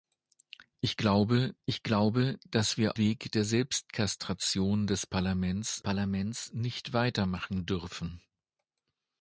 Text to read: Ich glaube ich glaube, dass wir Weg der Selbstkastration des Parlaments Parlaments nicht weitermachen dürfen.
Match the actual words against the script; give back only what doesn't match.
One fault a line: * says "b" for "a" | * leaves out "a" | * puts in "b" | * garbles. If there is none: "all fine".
all fine